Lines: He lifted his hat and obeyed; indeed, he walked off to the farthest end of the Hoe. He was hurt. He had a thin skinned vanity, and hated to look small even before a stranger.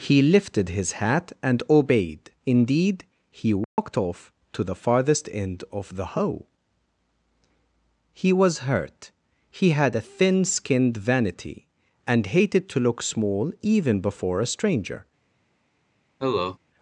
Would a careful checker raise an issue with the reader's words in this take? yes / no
no